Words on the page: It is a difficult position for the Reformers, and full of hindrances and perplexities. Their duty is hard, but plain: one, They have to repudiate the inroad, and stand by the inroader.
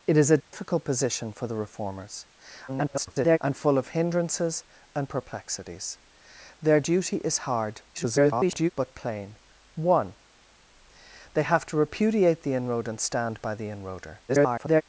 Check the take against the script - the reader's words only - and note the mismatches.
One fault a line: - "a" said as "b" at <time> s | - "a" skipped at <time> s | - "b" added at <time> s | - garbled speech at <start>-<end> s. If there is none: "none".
- garbled speech at 2.7-3.4 s
- garbled speech at 7.9-8.7 s
- garbled speech at 14.3-14.8 s